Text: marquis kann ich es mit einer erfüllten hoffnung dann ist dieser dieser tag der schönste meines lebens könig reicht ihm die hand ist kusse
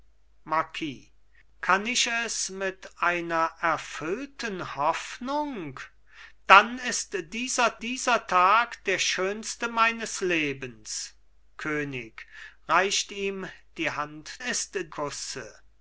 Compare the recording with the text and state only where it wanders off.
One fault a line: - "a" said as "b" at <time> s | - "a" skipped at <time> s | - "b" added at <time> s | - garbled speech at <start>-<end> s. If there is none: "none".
none